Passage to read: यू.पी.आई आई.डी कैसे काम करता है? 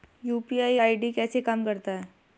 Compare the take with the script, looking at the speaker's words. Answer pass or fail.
pass